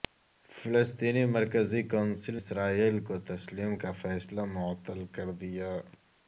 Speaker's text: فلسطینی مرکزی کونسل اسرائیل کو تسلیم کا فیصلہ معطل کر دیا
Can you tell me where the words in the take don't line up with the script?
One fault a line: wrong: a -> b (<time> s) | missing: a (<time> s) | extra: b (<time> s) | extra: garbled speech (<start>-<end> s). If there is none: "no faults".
no faults